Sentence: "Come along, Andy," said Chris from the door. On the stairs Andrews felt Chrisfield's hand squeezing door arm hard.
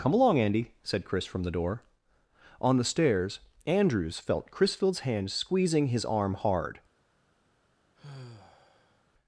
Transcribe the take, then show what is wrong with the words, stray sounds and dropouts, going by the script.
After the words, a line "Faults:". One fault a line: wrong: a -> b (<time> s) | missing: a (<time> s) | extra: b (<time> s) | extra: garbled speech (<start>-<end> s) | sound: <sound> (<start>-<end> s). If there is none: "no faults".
"Come along, Andy," said Chris from the door. On the stairs Andrews felt Chrisfield's hand squeezing his arm hard.
Faults:
wrong: door -> his (5.9 s)
sound: sigh (7.9-9.0 s)